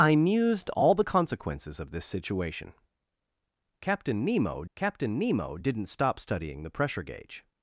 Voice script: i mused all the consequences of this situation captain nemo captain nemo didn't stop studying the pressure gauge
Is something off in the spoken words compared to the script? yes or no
no